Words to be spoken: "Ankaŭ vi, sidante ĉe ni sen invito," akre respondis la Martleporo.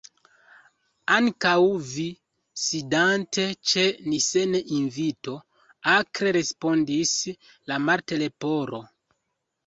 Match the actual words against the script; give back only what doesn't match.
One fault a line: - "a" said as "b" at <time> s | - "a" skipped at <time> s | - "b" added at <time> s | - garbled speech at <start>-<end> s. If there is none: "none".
none